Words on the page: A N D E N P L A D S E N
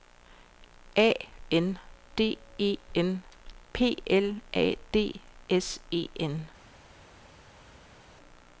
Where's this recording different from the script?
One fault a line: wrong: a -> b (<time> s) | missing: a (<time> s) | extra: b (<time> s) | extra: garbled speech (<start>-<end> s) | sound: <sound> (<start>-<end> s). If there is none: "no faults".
no faults